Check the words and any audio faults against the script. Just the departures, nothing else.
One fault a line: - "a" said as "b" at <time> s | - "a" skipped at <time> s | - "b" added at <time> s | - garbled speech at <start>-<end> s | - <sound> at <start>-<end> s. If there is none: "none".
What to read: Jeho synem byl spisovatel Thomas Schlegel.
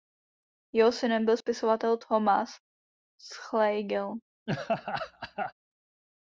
- laugh at 4.5-5.5 s